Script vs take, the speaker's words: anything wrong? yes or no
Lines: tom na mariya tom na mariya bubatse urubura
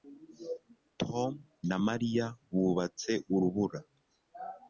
yes